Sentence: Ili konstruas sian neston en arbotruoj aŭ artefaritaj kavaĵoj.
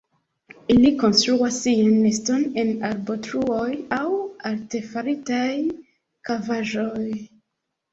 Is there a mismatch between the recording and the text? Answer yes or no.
no